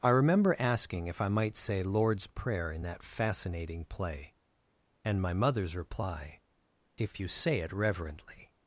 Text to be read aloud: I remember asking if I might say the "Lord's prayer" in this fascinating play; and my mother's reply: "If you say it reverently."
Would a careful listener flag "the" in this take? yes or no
yes